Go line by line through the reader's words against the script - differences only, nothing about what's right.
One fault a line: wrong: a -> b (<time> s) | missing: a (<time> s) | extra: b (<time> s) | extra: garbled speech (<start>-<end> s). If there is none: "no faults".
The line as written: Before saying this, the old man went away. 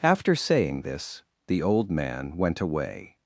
wrong: Before -> After (0.0 s)